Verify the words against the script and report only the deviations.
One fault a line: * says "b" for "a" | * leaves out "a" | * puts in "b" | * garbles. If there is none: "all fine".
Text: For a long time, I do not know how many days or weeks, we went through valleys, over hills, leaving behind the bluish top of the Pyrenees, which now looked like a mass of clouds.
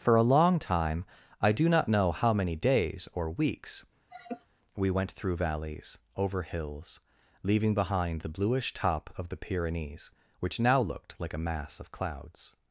all fine